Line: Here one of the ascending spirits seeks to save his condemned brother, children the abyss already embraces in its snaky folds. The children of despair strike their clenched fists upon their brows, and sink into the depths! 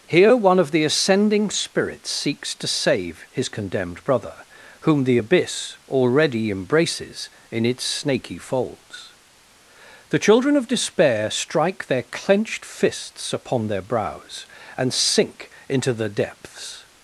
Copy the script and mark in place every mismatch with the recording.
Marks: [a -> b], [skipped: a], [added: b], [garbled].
Here one of the ascending spirits seeks to save his condemned brother, [children -> whom] the abyss already embraces in its snaky folds. The children of despair strike their clenched fists upon their brows, and sink into the depths!